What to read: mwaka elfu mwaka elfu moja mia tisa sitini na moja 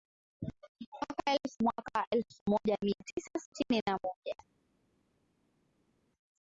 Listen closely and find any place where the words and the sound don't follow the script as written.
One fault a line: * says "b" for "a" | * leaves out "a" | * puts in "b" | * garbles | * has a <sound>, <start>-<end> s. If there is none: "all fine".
all fine